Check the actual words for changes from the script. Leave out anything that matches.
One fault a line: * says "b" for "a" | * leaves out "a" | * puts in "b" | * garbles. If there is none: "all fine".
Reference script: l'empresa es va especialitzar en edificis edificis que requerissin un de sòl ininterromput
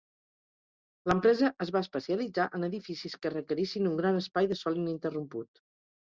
* leaves out "edificis"
* puts in "gran espai"